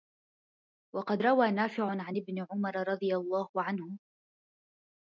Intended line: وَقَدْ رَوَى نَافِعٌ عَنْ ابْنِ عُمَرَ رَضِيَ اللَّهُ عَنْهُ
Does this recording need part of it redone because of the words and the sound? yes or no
no